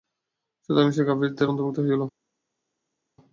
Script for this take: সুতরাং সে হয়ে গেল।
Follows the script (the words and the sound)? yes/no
no